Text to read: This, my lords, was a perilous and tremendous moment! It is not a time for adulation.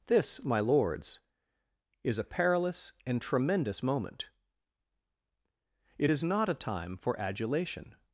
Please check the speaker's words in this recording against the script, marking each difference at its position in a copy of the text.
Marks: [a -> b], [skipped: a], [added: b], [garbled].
This, my lords, [was -> is] a perilous and tremendous moment! It is not a time for adulation.